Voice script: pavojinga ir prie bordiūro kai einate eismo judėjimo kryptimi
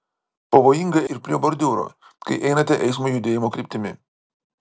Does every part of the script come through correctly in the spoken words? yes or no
yes